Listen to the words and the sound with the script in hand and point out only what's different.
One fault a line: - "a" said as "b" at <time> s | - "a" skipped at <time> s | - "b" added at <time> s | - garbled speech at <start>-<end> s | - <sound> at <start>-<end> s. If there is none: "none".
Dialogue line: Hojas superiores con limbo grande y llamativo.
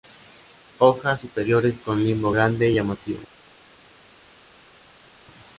none